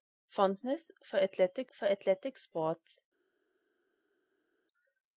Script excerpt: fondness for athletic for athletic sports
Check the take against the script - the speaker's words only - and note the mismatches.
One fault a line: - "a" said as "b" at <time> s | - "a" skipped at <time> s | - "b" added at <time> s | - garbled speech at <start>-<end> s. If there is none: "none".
none